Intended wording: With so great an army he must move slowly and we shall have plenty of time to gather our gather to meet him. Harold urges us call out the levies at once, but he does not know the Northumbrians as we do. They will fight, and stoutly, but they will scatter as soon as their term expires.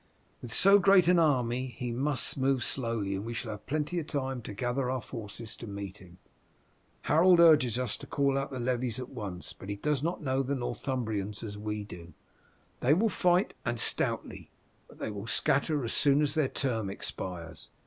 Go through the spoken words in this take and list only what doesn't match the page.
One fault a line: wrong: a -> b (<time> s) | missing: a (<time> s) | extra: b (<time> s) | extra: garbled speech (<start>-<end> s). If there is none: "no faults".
wrong: gather -> forces (5.0 s)
extra: to (8.0 s)